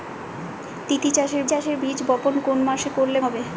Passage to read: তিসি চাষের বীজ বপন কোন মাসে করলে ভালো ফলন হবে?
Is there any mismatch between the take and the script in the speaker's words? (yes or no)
yes